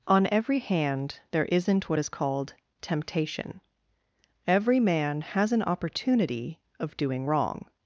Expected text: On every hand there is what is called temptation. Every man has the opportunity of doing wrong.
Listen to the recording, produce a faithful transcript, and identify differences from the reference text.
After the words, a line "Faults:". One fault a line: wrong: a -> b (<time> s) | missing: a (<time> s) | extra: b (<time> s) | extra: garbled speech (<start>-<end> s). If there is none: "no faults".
On every hand there isn't what is called temptation. Every man has an opportunity of doing wrong.
Faults:
wrong: is -> isn't (1.4 s)
wrong: the -> an (5.5 s)